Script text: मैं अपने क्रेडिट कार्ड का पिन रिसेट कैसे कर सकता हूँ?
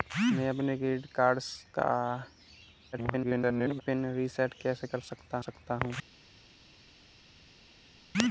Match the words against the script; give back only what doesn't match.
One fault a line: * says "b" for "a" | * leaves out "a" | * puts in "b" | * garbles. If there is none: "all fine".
* garbles
* puts in "सकता"